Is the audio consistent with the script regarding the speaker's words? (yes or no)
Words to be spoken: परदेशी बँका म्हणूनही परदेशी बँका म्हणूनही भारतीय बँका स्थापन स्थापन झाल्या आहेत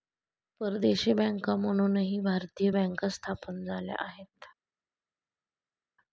no